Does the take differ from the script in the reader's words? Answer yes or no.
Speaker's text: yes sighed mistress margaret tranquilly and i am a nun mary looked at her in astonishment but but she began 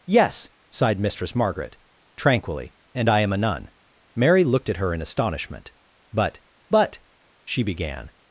no